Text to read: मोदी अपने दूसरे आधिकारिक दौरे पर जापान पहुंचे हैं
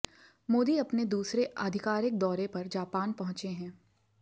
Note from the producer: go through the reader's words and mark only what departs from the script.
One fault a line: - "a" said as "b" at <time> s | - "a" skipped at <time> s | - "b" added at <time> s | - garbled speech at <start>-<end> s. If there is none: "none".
none